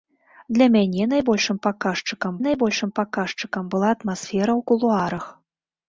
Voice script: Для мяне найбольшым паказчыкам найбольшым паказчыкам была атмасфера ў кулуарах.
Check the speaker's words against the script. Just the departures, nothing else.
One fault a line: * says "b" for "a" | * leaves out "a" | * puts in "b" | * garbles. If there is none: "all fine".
all fine